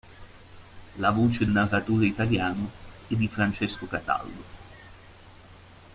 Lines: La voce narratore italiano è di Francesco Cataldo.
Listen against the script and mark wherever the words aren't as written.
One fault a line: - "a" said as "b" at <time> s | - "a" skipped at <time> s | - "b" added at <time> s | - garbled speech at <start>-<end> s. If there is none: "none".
none